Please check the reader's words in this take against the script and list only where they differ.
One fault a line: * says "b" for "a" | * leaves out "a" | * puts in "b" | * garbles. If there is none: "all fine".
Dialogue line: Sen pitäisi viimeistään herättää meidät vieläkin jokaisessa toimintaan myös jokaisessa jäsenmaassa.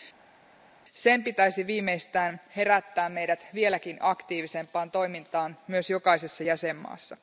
* says "aktiivisempaan" for "jokaisessa"